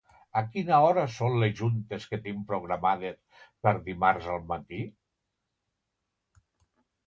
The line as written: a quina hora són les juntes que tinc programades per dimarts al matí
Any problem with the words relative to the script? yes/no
no